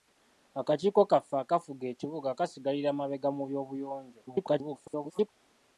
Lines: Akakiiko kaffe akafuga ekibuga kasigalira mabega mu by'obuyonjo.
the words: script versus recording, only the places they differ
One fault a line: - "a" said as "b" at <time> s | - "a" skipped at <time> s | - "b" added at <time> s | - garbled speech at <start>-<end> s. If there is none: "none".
- garbled speech at 4.3-5.3 s